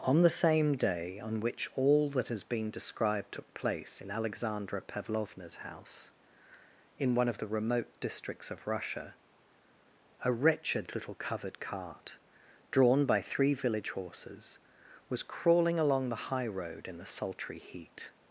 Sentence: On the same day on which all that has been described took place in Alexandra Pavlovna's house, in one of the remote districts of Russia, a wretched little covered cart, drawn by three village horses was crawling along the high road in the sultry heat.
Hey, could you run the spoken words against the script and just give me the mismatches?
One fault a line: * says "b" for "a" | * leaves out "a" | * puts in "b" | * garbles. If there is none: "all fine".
all fine